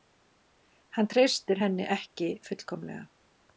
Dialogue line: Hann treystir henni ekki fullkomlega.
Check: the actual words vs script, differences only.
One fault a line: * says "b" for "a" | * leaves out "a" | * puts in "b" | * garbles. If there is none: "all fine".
all fine